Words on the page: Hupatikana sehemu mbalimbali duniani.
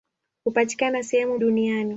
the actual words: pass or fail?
fail